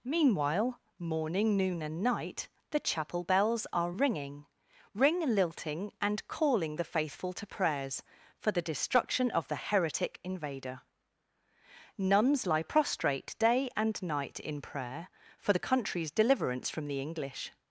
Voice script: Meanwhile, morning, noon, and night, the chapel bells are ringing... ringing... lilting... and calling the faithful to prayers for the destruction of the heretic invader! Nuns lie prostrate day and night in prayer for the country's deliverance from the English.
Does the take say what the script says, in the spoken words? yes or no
no